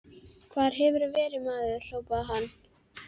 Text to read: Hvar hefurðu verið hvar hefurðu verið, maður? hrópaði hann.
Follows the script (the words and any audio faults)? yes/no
no